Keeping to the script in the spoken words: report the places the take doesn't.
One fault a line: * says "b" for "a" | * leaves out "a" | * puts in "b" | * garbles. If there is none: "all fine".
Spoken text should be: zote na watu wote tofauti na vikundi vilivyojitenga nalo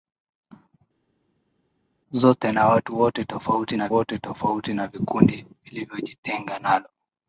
* puts in "wote tofauti na"